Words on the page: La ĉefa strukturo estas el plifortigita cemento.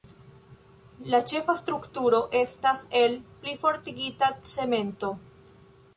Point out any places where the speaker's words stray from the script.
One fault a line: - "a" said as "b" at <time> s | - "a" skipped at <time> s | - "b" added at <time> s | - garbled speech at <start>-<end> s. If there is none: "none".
none